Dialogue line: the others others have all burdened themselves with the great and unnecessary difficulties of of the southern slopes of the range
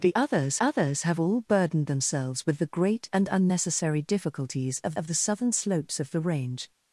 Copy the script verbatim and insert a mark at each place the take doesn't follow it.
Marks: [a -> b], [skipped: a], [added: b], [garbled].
the others others have all burdened themselves with the great and unnecessary difficulties of of the southern slopes of the range